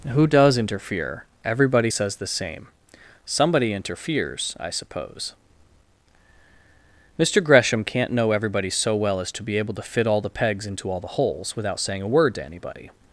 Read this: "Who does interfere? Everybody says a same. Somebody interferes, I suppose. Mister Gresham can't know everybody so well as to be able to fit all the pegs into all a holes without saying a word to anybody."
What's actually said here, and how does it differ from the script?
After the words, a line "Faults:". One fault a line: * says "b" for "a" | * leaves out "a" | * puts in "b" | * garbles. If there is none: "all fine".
"Who does interfere? Everybody says the same. Somebody interferes, I suppose. Mister Gresham can't know everybody so well as to be able to fit all the pegs into all the holes without saying a word to anybody."
Faults:
* says "the" for "a"
* says "the" for "a"